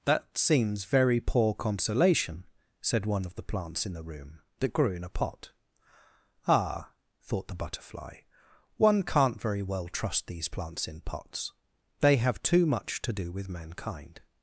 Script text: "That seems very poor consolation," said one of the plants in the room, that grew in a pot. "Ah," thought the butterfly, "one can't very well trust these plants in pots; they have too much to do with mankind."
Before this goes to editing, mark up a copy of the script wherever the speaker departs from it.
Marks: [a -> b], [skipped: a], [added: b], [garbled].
"That seems very poor consolation," said one of the plants in the room, that grew in a pot. "Ah," thought the butterfly, "one can't very well trust these plants in pots; they have too much to do with mankind."